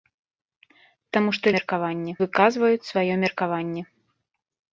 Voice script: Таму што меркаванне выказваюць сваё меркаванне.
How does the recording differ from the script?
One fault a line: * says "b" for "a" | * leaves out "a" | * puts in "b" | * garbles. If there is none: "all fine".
all fine